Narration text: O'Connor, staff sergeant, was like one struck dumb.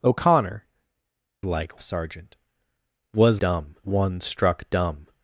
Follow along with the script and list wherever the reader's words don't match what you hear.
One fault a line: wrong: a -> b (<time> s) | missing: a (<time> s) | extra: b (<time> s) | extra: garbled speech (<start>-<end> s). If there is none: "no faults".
wrong: staff -> like (1.4 s)
wrong: like -> dumb (3.4 s)